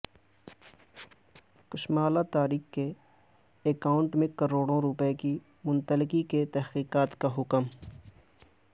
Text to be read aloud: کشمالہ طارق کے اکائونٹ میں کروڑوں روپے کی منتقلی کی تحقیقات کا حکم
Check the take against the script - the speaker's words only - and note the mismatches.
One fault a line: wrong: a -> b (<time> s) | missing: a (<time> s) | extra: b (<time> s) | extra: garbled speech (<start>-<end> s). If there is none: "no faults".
no faults